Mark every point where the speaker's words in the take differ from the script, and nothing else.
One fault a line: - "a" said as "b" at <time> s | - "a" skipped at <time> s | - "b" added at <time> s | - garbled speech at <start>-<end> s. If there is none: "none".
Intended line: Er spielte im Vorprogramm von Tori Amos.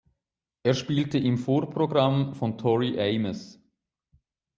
none